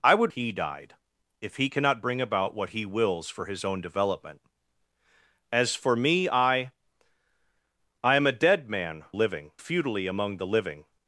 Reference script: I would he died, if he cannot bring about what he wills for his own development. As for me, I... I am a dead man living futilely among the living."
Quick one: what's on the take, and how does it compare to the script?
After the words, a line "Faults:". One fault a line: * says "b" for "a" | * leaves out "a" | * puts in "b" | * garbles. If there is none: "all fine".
I would he died, if he cannot bring about what he wills for his own development. As for me, I... I am a dead man living futilely among the living."
Faults:
all fine